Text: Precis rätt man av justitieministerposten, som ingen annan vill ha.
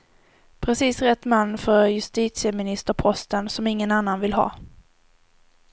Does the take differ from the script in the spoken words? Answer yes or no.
yes